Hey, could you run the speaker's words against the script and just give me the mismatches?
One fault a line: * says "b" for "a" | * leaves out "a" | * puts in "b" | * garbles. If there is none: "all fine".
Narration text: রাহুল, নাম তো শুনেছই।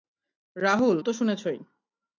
* leaves out "নাম"